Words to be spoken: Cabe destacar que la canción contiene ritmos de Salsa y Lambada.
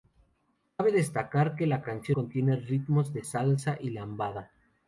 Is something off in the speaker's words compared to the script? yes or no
no